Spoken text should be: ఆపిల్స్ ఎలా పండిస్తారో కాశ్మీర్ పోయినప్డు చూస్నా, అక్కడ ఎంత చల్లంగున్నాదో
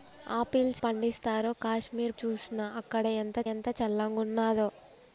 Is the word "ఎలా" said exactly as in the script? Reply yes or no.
no